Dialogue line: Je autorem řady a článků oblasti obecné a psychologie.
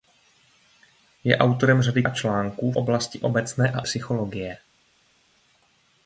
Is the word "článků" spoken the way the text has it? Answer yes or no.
yes